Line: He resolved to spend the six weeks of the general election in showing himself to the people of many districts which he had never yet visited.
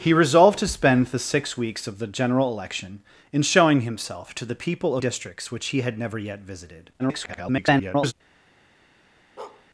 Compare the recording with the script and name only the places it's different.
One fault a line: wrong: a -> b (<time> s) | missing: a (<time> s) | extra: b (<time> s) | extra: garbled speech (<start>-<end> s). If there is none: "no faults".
missing: of many (5.0 s)
extra: garbled speech (7.0-8.1 s)